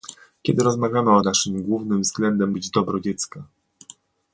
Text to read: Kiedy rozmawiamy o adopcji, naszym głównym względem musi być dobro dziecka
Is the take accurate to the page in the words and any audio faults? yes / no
no